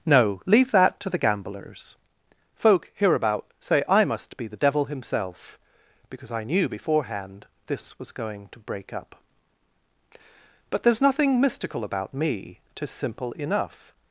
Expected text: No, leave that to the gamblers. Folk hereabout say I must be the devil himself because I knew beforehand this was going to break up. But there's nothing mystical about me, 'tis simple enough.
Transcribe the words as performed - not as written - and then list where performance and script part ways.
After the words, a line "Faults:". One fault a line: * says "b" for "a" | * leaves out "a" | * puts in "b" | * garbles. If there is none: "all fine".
No, leave that to the gamblers. Folk hereabout say I must be the devil himself because I knew beforehand this was going to break up. But there's nothing mystical about me, 'tis simple enough.
Faults:
all fine